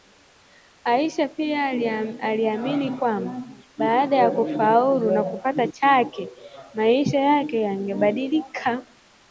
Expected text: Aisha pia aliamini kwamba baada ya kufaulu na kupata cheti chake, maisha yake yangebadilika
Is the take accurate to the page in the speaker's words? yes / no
no